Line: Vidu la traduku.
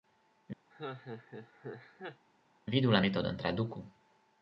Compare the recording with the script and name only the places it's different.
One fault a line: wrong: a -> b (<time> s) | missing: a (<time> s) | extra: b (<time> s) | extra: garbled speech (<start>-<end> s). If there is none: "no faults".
extra: metodon (3.1 s)